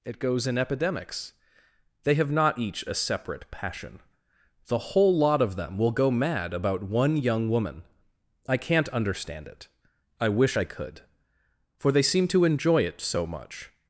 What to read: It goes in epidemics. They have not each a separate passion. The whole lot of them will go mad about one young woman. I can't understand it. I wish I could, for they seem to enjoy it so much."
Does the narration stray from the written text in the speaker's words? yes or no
no